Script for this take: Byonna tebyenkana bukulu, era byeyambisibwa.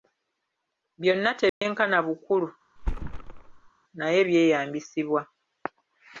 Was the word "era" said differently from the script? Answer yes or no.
yes